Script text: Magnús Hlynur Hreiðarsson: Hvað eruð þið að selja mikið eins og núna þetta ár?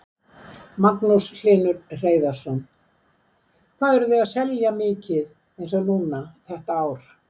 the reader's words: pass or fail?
pass